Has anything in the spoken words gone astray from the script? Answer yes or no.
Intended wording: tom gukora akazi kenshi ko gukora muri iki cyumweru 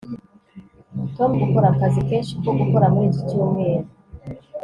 no